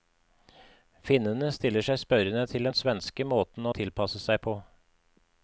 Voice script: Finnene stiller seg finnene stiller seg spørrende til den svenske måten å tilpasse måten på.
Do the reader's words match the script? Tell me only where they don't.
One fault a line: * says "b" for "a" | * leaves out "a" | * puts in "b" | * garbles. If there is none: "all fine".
* leaves out "finnene stiller seg"
* says "seg" for "måten"